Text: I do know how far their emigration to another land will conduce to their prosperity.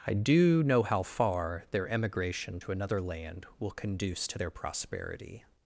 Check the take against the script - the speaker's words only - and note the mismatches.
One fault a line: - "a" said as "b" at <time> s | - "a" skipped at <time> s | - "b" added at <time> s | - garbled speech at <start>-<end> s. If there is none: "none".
none